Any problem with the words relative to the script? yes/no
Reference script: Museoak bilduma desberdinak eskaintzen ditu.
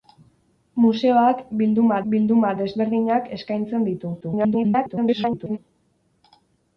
yes